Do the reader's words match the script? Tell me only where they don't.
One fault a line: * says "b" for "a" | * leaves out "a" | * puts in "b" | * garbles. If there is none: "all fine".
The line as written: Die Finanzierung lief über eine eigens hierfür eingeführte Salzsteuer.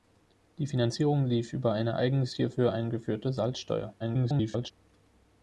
* garbles